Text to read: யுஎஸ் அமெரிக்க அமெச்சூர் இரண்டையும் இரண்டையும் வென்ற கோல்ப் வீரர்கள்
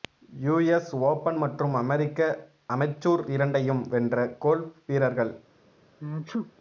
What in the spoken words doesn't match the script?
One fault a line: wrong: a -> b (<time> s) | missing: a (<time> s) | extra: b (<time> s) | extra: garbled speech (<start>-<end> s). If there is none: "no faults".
extra: ஓபன் மற்றும் (1.0 s)
missing: இரண்டையும் (3.8 s)